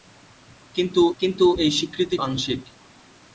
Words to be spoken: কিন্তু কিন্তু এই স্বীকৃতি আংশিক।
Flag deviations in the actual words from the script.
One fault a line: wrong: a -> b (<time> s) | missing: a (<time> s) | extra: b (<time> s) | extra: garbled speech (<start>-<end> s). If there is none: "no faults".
no faults